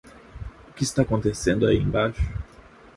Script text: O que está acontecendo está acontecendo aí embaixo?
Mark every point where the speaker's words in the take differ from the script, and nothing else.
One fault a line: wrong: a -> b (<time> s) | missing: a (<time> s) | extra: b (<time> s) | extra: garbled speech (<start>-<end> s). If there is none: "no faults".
missing: está acontecendo (1.7 s)